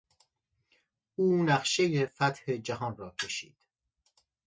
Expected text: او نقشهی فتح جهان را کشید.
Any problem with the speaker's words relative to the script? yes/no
no